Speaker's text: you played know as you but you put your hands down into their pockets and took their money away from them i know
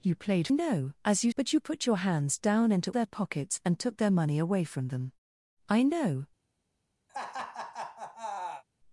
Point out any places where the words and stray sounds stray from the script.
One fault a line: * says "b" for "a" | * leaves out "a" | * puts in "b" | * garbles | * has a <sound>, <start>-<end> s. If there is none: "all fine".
* has a laugh, 7.1-8.6 s